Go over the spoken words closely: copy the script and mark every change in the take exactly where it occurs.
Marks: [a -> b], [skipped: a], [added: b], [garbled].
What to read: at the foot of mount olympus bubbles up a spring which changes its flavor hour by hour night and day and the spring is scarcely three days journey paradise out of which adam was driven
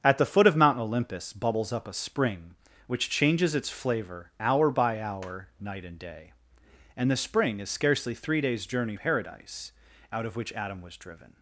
at the foot of mount olympus bubbles up a spring which changes its flavor hour by hour night and day and the spring is scarcely three days journey paradise out of which adam was driven